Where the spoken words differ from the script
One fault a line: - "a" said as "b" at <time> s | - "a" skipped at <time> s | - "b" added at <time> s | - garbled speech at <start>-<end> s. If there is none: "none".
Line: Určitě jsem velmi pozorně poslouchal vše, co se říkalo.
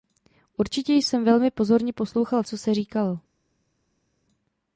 - "vše" skipped at 2.4 s